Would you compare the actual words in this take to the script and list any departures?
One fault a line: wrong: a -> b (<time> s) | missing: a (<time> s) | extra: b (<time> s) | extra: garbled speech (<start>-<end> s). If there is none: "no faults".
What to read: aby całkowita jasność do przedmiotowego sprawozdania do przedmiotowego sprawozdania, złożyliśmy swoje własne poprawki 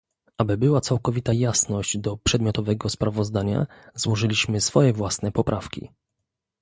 extra: była (0.6 s)
missing: do przedmiotowego sprawozdania (3.7 s)